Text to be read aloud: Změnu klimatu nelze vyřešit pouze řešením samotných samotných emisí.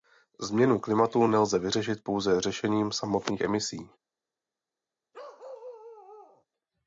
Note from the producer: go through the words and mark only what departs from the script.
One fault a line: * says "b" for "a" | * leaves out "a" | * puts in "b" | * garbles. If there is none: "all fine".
* leaves out "samotných"